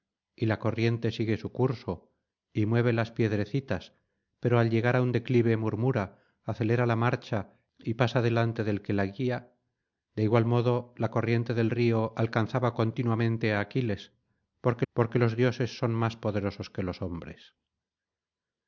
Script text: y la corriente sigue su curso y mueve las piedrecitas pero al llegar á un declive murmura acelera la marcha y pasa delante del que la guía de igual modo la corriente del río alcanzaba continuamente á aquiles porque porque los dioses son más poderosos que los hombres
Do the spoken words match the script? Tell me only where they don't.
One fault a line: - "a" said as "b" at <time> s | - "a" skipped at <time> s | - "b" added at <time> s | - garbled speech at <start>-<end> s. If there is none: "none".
none